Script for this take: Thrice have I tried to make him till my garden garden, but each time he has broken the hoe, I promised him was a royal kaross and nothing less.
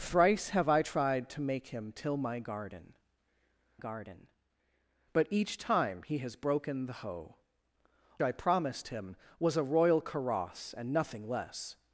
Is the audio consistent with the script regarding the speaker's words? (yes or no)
yes